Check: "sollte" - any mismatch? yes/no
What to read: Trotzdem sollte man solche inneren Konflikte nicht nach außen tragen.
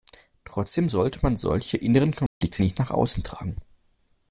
no